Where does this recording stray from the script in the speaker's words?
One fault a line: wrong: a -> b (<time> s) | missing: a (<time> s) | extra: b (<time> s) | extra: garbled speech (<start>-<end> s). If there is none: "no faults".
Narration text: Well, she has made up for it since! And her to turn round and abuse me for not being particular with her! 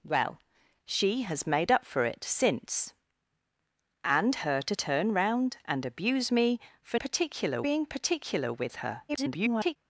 wrong: not -> particular (7.0 s)
extra: garbled speech (9.1-9.8 s)